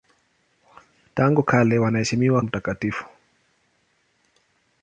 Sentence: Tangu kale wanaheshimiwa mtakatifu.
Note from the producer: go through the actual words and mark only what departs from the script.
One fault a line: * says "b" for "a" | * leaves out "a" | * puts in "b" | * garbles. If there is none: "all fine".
all fine